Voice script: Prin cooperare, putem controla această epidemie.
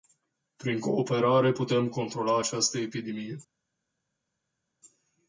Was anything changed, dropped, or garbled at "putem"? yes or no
no